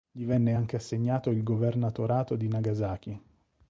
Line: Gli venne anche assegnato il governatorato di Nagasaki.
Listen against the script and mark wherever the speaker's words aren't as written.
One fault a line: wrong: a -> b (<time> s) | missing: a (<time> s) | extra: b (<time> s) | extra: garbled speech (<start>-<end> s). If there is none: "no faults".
no faults